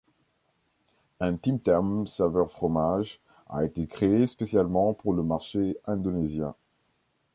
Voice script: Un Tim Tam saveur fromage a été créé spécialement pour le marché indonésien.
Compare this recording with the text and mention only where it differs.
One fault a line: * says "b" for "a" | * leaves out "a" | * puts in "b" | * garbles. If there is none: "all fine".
all fine